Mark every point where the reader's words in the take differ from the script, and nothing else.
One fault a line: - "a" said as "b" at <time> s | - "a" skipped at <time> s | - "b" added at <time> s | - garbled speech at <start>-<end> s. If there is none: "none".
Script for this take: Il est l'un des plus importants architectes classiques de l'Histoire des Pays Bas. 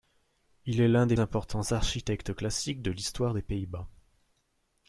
- "plus" skipped at 1.2 s